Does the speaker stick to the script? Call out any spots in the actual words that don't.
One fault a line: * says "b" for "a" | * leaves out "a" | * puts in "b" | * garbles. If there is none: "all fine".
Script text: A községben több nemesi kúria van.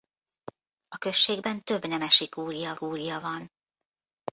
* puts in "kúria"